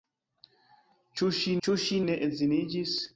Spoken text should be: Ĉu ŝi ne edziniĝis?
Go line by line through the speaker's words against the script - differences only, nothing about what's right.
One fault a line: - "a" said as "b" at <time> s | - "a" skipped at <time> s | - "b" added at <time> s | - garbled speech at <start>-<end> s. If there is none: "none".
- "ĉu ŝi" added at 1.7 s